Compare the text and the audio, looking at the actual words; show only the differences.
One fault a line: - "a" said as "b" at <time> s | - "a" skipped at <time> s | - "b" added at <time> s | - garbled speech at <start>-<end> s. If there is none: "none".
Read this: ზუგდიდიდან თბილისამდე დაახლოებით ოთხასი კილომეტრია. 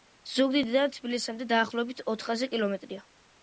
none